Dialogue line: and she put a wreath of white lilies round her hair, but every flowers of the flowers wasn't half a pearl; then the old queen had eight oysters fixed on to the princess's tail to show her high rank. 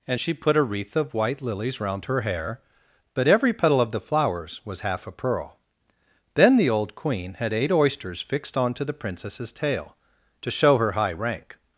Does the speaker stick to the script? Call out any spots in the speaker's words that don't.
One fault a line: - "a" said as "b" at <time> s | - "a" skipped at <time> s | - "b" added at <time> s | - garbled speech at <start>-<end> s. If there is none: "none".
- "flowers" said as "petal" at 3.5 s
- "wasn't" said as "was" at 4.6 s